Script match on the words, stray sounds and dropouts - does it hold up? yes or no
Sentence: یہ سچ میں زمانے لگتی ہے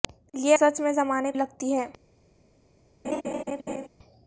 no